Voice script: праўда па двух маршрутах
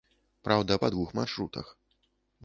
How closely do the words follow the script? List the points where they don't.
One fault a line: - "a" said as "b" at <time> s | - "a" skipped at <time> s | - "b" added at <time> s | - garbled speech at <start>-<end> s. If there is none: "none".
none